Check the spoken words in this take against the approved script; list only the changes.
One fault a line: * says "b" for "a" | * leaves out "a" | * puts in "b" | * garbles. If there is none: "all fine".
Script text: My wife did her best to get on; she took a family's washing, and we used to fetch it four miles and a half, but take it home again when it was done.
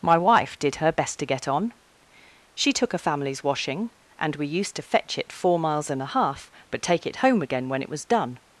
all fine